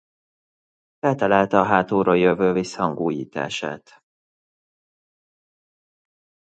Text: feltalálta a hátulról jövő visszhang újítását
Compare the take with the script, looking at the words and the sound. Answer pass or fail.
pass